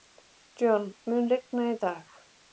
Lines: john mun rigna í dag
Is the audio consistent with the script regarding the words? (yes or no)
yes